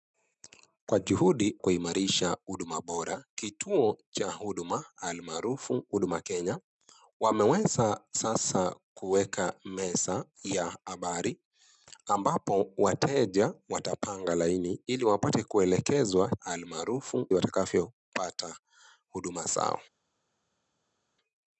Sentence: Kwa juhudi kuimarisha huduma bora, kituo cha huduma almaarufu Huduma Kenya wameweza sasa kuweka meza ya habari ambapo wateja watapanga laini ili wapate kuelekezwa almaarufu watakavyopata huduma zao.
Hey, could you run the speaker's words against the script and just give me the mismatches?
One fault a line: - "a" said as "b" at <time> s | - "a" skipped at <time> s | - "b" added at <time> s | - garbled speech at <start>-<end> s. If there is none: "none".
none